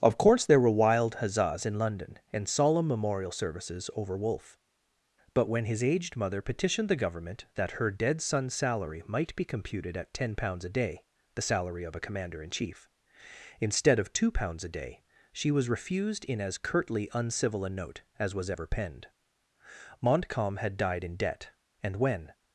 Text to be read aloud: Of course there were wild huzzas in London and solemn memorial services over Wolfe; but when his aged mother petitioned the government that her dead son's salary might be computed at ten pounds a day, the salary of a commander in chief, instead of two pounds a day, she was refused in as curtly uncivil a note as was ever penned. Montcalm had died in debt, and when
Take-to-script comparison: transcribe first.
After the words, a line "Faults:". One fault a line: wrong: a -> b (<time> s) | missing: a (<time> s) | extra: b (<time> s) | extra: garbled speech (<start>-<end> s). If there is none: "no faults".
Of course there were wild huzzas in London and solemn memorial services over Wolfe; but when his aged mother petitioned the government that her dead son's salary might be computed at ten pounds a day, the salary of a commander in chief, instead of two pounds a day, she was refused in as curtly uncivil a note as was ever penned. Montcalm had died in debt, and when
Faults:
no faults